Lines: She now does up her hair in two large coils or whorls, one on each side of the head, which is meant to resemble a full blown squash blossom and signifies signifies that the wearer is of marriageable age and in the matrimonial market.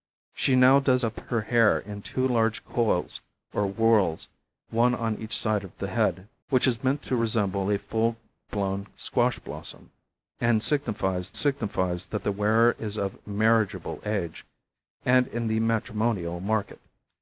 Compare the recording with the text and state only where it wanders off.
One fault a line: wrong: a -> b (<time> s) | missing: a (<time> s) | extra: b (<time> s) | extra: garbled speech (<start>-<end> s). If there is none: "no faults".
no faults